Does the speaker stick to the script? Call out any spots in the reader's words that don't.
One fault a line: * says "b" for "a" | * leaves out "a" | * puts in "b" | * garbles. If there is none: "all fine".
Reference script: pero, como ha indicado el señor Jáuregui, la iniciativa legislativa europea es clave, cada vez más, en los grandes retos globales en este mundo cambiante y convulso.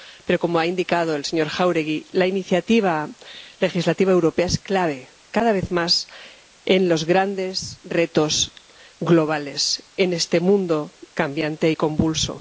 all fine